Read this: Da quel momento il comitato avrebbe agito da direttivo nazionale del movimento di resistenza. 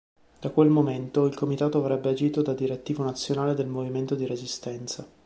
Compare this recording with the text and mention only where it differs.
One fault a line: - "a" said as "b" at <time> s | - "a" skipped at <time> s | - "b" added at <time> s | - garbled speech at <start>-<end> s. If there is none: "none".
none